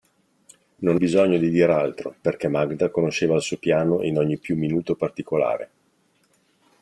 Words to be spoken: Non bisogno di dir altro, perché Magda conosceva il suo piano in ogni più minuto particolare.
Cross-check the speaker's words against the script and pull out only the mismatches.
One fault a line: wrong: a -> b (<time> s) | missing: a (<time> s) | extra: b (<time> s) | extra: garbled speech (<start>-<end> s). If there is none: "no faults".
no faults